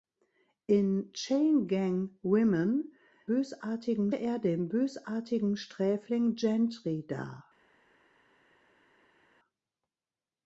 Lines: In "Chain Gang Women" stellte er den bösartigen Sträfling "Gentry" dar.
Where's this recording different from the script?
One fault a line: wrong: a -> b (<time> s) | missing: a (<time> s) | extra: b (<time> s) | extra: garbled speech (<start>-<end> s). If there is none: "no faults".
wrong: stellte -> bösartigen (3.2 s)